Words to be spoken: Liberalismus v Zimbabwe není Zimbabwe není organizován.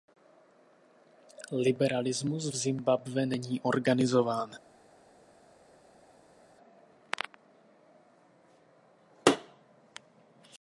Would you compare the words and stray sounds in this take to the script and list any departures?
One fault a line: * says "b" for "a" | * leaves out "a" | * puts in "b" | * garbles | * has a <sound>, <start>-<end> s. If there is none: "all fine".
* leaves out "Zimbabwe není"